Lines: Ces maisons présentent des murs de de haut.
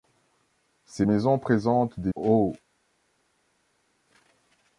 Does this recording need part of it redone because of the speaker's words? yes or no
yes